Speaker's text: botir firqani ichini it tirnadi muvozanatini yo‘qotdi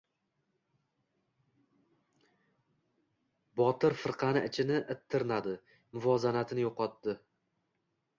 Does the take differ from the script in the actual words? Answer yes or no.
no